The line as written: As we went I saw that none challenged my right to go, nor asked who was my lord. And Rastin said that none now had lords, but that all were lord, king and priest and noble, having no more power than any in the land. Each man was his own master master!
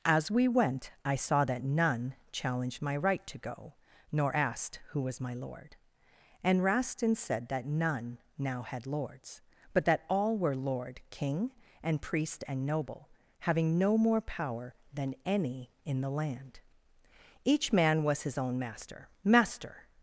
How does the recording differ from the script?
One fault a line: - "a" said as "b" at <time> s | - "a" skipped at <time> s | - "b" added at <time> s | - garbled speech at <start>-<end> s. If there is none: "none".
none